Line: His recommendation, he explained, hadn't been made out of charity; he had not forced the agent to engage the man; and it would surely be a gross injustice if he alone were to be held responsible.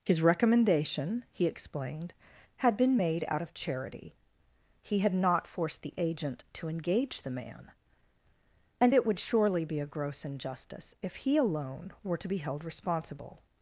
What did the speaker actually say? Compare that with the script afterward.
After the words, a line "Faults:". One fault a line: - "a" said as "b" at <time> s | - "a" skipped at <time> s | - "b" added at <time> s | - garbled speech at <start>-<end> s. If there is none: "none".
His recommendation, he explained, had been made out of charity; he had not forced the agent to engage the man; and it would surely be a gross injustice if he alone were to be held responsible.
Faults:
- "hadn't" said as "had" at 2.6 s